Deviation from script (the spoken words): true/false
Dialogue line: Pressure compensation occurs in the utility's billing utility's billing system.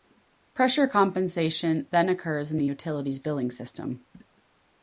true